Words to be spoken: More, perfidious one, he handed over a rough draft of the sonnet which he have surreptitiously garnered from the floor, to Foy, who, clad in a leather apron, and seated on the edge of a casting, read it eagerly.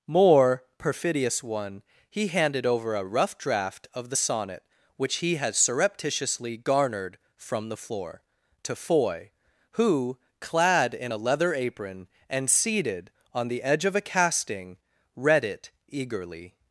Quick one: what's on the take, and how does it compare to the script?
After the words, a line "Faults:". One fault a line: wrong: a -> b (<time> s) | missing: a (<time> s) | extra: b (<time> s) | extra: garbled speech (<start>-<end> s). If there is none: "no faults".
More, perfidious one, he handed over a rough draft of the sonnet which he had surreptitiously garnered from the floor, to Foy, who, clad in a leather apron, and seated on the edge of a casting, read it eagerly.
Faults:
wrong: have -> had (5.4 s)